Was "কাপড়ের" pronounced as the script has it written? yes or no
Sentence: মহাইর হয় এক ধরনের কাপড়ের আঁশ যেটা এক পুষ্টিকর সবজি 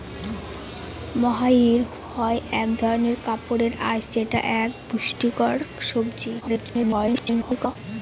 yes